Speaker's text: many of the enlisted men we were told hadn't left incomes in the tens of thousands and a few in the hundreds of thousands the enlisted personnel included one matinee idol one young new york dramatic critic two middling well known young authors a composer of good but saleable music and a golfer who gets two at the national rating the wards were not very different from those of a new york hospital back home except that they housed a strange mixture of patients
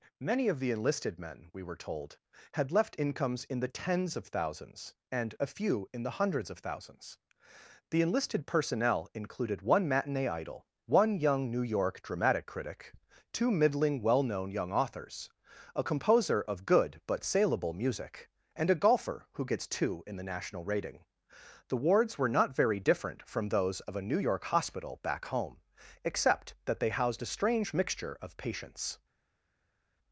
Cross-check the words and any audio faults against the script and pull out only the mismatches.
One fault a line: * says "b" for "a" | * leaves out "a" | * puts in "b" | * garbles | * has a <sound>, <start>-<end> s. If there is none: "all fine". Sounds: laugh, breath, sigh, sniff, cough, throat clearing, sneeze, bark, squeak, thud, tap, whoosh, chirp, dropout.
* says "had" for "hadn't"
* says "in" for "at"